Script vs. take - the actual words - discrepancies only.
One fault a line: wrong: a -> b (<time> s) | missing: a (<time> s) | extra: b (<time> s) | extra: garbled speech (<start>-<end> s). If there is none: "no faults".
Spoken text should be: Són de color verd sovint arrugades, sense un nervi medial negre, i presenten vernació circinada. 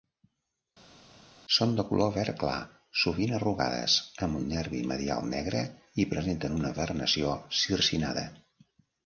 extra: clar (2.4 s)
wrong: sense -> amb (4.3 s)
extra: una (6.6 s)